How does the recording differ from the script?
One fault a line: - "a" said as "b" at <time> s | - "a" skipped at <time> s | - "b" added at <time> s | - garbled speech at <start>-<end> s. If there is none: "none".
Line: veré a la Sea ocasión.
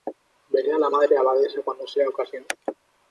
- "Madre Abadesa cuando" added at 0.9 s